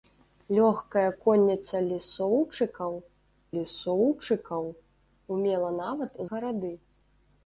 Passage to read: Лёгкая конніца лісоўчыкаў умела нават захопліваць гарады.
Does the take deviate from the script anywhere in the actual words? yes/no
yes